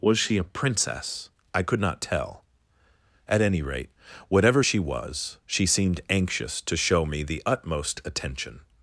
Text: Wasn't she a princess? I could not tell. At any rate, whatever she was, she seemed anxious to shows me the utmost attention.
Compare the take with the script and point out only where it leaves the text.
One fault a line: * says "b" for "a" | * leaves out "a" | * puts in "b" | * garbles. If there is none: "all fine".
* says "Was" for "Wasn't"
* says "show" for "shows"